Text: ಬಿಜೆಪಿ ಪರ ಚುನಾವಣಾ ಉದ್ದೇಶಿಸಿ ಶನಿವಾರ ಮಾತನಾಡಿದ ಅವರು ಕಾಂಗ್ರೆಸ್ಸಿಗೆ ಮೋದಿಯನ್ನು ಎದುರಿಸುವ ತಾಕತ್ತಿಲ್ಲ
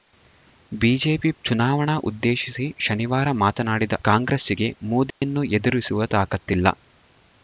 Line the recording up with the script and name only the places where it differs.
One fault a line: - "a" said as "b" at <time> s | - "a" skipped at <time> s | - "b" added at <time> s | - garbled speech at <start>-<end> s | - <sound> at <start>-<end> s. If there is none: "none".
- "ಪರ" skipped at 1.3 s
- "ಅವರು" skipped at 4.0 s
- dropout at 5.1-5.2 s